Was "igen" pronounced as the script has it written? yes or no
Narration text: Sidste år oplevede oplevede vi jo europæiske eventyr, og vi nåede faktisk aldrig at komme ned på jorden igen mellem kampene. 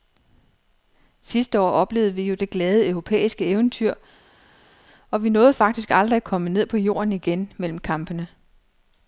yes